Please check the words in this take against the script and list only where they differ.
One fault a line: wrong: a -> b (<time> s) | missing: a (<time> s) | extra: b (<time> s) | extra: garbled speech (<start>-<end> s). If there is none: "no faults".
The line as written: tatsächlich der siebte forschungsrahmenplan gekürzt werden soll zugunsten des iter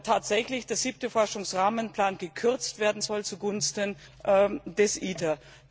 no faults